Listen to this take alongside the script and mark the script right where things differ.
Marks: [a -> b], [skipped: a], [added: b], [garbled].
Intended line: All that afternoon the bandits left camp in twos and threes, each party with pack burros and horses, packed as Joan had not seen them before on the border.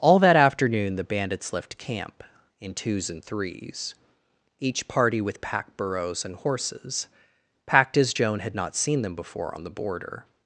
All that afternoon the bandits left camp in twos and threes, each party with pack burros and horses, packed as Joan had not seen them before on the border.